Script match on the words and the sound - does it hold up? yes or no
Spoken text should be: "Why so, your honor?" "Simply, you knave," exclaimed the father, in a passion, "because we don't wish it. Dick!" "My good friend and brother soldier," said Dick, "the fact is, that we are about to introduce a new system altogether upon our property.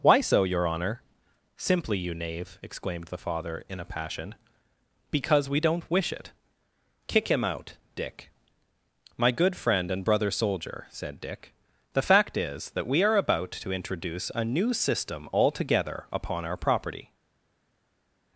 no